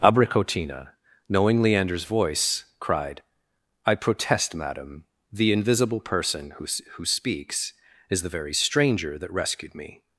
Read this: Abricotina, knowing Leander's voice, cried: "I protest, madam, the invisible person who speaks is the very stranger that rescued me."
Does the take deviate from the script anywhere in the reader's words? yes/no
yes